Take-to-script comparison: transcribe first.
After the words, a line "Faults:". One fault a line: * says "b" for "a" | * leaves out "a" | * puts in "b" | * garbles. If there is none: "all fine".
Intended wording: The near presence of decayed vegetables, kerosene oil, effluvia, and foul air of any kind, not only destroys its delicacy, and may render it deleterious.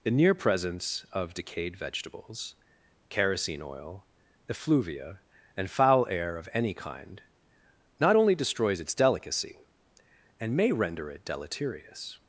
The near presence of decayed vegetables, kerosene oil, effluvia, and foul air of any kind, not only destroys its delicacy, and may render it deleterious.
Faults:
all fine